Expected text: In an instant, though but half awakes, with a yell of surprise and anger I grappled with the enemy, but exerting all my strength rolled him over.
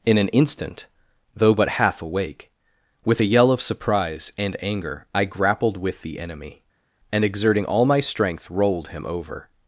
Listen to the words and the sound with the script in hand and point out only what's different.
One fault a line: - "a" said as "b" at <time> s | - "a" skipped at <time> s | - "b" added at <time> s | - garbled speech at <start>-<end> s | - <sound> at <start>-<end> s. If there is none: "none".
- "awakes" said as "awake" at 2.0 s
- "but" said as "and" at 7.1 s